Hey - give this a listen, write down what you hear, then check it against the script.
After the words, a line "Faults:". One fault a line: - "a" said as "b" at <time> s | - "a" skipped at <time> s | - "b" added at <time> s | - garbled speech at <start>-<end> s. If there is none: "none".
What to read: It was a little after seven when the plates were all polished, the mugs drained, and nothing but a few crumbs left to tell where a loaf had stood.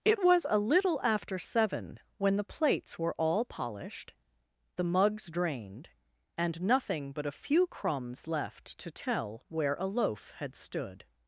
It was a little after seven when the plates were all polished, the mugs drained, and nothing but a few crumbs left to tell where a loaf had stood.
Faults:
none